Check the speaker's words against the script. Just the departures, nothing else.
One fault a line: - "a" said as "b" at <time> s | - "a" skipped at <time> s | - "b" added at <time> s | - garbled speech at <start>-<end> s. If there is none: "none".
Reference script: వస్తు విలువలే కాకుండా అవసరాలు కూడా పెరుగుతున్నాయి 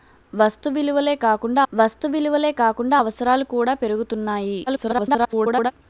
- "వస్తు విలువలే కాకుండా" added at 1.7 s
- garbled speech at 4.7-5.7 s